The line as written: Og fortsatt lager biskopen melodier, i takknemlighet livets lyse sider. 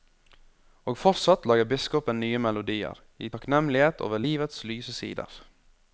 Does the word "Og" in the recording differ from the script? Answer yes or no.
no